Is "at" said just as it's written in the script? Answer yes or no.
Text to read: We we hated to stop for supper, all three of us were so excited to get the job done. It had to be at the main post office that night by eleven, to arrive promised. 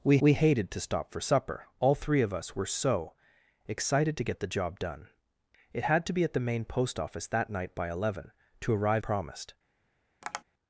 yes